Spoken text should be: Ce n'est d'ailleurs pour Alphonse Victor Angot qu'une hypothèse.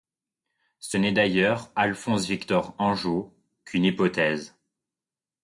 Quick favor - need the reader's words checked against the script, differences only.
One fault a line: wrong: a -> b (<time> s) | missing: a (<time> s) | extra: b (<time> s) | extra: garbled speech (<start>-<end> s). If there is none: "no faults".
missing: pour (1.7 s)